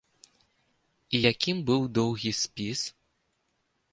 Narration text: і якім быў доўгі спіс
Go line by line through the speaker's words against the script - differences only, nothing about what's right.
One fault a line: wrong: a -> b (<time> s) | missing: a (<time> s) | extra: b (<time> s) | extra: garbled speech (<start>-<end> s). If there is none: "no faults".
no faults